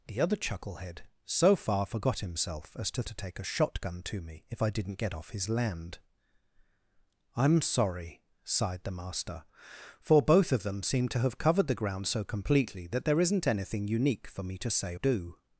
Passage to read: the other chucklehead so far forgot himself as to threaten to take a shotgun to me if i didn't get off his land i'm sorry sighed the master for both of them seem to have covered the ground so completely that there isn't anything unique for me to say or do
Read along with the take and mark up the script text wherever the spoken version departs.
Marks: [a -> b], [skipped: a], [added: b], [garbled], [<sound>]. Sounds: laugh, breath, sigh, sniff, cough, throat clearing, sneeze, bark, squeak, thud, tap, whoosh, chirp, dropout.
the other chucklehead so far forgot himself as to [skipped: threaten] to take a shotgun to me if i didn't get off his land i'm sorry sighed the master for both of them seem to have covered the ground so completely that there isn't anything unique for me to say [skipped: or] do